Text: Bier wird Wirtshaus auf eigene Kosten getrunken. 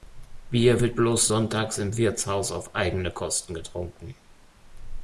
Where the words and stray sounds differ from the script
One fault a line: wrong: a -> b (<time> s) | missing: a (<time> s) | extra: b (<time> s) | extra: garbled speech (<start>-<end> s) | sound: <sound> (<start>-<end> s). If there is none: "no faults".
extra: bloß sonntags im (0.9 s)